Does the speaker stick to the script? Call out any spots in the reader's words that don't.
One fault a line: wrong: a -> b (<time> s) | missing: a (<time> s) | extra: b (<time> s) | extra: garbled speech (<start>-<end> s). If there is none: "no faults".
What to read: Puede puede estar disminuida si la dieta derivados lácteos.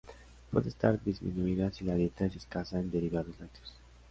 missing: puede (0.7 s)
extra: es escasa en (2.2 s)